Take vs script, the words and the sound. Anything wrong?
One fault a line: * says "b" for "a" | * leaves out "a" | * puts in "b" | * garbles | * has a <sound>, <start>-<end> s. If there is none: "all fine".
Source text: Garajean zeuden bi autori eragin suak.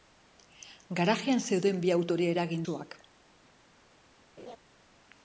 * has a laugh, 4.4-4.6 s